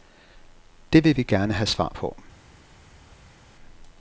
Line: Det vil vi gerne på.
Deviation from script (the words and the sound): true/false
true